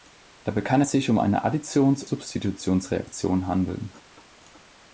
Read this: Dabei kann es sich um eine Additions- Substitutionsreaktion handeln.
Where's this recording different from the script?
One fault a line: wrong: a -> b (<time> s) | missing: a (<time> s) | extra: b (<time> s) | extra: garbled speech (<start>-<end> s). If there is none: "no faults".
no faults